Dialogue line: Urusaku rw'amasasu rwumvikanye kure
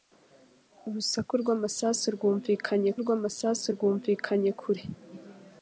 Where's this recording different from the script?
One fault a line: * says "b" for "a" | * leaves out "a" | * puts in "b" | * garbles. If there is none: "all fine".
* puts in "rw'amasasu rwumvikanye"